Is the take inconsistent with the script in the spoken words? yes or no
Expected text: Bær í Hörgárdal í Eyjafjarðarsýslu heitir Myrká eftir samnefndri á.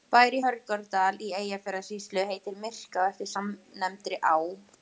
no